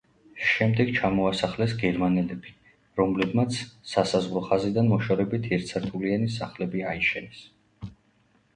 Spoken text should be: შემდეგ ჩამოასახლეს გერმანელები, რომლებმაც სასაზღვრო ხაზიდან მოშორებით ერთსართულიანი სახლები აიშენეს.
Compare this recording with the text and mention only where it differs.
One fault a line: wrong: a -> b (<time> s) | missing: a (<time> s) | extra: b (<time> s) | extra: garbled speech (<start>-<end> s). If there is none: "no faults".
no faults